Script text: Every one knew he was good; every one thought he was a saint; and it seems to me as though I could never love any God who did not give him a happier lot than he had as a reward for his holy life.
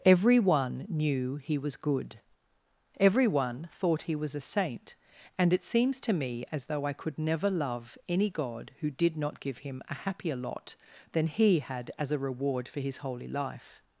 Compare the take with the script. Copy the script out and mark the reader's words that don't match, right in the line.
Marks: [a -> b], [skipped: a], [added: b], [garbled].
Every one knew he was good; every one thought he was a saint; and it seems to me as though I could never love any God who did not give him a happier lot than he had as a reward for his holy life.